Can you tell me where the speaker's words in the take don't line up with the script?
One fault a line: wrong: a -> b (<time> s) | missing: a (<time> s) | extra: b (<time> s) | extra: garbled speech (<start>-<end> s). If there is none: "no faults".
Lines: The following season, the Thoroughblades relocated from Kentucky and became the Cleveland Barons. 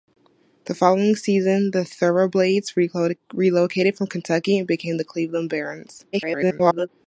extra: garbled speech (6.1-6.9 s)